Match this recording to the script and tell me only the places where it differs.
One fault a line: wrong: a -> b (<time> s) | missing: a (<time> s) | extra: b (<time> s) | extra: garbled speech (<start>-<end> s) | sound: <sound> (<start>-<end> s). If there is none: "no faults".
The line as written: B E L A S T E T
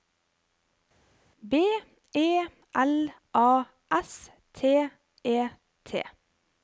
no faults